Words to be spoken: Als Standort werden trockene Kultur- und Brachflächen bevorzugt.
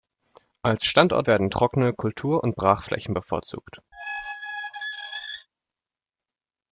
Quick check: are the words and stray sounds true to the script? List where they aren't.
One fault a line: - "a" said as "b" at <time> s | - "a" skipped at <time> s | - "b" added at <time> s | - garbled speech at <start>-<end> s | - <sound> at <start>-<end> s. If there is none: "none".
- squeak at 3.9-5.5 s